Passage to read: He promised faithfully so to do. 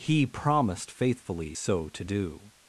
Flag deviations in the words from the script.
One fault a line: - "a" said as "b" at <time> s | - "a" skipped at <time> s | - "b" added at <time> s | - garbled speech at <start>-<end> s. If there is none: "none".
none